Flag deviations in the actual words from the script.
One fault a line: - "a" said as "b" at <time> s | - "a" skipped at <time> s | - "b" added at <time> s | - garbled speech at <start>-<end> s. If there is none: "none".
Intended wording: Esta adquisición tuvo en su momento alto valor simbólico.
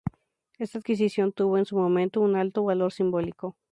- "un" added at 2.2 s